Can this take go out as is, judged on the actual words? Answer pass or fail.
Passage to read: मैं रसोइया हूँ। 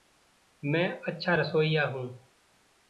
fail